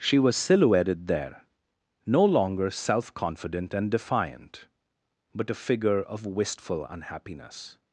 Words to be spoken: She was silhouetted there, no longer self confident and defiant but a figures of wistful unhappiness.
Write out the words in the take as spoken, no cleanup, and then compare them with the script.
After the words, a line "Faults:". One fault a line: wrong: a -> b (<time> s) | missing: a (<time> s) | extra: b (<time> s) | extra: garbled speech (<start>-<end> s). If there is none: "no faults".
She was silhouetted there, no longer self confident and defiant but a figure of wistful unhappiness.
Faults:
wrong: figures -> figure (5.5 s)